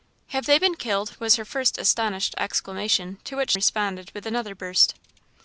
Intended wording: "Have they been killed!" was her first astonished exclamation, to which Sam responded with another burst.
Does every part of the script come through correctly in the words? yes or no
no